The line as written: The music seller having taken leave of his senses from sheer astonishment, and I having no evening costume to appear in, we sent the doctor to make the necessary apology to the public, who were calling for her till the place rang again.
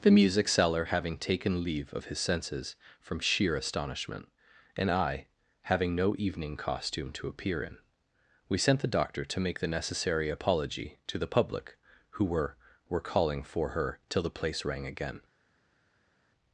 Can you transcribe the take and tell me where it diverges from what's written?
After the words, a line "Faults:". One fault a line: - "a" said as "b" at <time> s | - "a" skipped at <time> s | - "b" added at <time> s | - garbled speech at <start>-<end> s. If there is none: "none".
The music seller having taken leave of his senses from sheer astonishment, and I having no evening costume to appear in, we sent the doctor to make the necessary apology to the public, who were were calling for her till the place rang again.
Faults:
- "were" added at 12.9 s